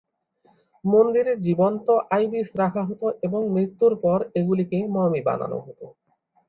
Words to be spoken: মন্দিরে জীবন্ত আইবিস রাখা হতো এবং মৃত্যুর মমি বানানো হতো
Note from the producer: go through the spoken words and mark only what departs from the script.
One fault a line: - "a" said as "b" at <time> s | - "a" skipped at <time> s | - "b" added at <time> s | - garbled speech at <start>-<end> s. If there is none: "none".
- "পর এগুলিকে" added at 4.0 s